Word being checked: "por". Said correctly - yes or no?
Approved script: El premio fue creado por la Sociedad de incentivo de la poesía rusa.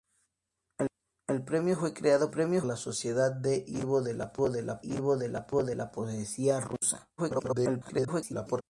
no